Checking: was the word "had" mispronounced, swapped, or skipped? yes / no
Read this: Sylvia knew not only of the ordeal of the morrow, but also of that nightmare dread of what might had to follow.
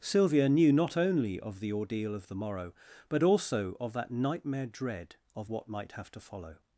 yes